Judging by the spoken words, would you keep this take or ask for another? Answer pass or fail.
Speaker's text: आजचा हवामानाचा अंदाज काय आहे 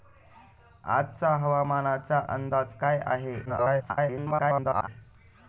fail